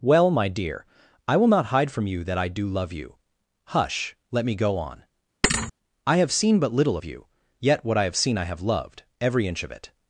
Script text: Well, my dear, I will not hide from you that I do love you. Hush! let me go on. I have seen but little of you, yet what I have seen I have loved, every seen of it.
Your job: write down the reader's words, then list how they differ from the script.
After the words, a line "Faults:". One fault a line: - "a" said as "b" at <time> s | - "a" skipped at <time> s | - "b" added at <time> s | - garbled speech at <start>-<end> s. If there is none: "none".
Well, my dear, I will not hide from you that I do love you. Hush! let me go on. I have seen but little of you, yet what I have seen I have loved, every inch of it.
Faults:
- "seen" said as "inch" at 9.5 s